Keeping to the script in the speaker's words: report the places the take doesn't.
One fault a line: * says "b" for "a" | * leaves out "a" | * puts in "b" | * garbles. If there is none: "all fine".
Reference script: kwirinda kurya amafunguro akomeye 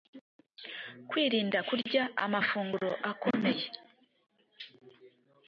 all fine